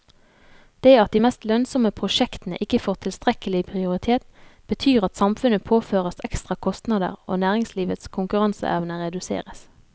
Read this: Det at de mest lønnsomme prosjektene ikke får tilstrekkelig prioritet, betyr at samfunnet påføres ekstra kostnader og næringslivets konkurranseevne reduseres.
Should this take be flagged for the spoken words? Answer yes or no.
no